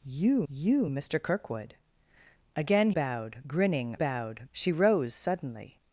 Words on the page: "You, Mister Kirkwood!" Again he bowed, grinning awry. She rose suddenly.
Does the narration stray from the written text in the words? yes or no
yes